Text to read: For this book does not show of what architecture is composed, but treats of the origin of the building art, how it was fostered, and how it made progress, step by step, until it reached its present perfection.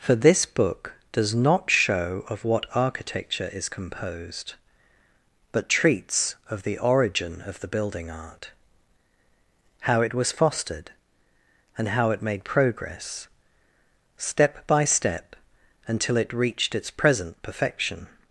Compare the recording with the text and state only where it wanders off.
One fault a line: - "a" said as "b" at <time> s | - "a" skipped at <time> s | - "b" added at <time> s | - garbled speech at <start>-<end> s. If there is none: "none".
none